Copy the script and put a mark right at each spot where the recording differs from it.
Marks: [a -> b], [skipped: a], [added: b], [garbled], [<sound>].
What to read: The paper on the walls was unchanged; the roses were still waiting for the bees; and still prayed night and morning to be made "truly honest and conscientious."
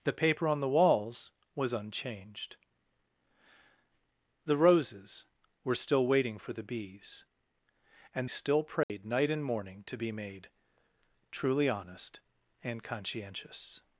The paper on the walls was unchanged; the roses were still waiting for the bees; and still prayed [dropout] night and morning to be made "truly honest and conscientious."